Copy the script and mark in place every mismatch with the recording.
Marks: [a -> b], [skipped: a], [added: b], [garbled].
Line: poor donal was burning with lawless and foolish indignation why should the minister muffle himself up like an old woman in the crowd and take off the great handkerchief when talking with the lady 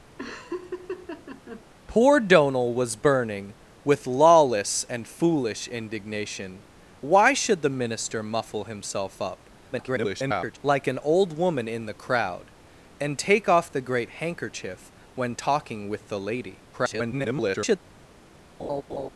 poor donal was burning with lawless and foolish indignation why should the minister muffle himself up [garbled] like an old woman in the crowd and take off the great handkerchief when talking with the lady [garbled]